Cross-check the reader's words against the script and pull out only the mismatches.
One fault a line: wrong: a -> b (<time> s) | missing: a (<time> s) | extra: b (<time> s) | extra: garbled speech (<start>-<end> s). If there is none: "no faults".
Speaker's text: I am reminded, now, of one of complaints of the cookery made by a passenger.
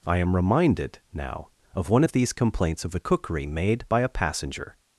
extra: these (2.1 s)